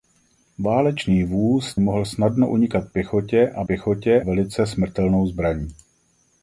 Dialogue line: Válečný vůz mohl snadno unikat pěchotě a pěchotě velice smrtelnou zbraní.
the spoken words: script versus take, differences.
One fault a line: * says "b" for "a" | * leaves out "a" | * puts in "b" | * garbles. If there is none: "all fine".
all fine